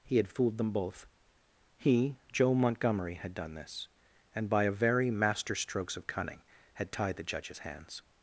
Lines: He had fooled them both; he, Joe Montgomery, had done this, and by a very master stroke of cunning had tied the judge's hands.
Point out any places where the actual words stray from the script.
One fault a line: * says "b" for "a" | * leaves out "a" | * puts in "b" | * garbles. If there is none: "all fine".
* says "strokes" for "stroke"